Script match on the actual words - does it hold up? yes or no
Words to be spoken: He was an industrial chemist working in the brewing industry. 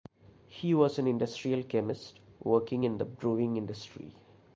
yes